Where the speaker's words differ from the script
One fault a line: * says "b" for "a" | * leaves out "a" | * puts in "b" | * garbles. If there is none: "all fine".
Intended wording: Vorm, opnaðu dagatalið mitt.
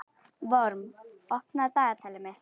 all fine